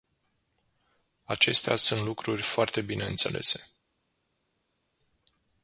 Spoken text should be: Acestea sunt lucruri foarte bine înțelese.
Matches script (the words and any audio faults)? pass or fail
pass